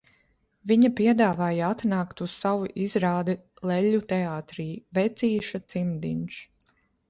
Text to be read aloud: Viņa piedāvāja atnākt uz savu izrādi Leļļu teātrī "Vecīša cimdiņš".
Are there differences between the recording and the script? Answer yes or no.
no